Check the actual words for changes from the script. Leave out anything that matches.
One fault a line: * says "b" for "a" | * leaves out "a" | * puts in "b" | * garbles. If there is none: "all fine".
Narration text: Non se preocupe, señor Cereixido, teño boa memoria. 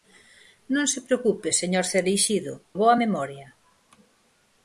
* leaves out "teño"